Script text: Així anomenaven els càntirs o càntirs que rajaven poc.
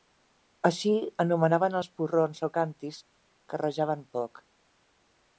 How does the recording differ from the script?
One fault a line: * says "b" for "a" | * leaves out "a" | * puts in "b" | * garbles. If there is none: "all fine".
* says "porrons" for "càntirs"